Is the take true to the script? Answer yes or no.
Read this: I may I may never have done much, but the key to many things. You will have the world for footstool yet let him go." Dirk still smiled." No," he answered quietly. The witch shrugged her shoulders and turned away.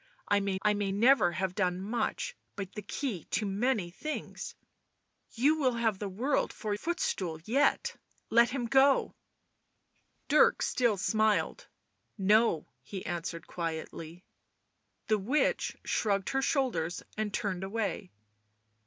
yes